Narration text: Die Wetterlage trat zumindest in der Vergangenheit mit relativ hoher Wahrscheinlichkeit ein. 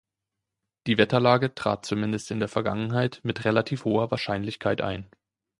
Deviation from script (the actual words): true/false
false